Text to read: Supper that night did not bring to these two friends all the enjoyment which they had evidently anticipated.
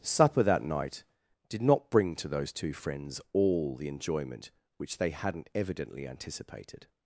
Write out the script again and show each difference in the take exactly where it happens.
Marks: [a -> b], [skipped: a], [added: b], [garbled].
Supper that night did not bring to [these -> those] two friends all the enjoyment which they [had -> hadn't] evidently anticipated.